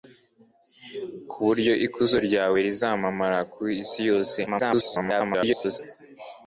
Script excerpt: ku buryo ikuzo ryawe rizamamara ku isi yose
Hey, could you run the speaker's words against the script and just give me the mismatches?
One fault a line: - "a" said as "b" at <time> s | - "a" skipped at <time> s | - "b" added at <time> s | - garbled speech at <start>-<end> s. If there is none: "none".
- garbled speech at 4.5-5.8 s